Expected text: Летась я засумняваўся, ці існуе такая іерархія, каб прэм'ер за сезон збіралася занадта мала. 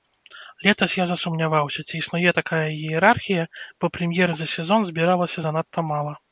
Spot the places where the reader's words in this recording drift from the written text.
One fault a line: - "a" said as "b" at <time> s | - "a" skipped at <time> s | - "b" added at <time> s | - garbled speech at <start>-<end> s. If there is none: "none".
- "каб" said as "бо" at 3.8 s